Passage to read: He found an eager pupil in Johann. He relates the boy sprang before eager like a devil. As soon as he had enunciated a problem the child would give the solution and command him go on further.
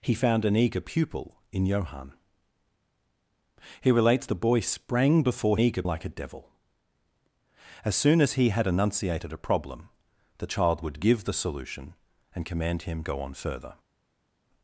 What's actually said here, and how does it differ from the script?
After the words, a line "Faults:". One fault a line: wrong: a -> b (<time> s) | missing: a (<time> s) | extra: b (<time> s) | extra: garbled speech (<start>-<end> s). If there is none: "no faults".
He found an eager pupil in Johann. He relates the boy sprang before eager like a devil. As soon as he had enunciated a problem the child would give the solution and command him go on further.
Faults:
no faults